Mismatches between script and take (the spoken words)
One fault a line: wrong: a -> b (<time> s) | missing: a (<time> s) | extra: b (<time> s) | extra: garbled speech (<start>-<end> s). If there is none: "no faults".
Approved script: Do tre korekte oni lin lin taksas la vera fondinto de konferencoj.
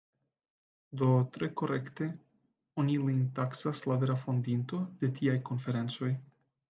missing: lin (3.2 s)
extra: tiaj (5.2 s)